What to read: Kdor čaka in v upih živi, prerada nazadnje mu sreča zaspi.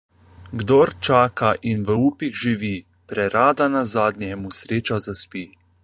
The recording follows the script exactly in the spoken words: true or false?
true